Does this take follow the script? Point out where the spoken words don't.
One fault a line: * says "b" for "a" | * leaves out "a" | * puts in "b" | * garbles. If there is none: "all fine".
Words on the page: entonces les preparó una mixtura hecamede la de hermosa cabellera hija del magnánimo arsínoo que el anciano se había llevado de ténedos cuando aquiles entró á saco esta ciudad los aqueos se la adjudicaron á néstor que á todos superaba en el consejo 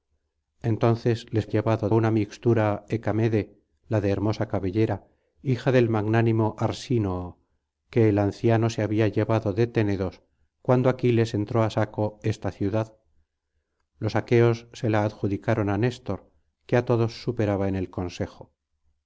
* says "llevado" for "preparó"